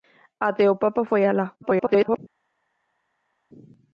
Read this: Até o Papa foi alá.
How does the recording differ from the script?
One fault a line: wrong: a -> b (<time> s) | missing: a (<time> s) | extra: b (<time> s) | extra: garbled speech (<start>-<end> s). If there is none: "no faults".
extra: garbled speech (1.6-2.2 s)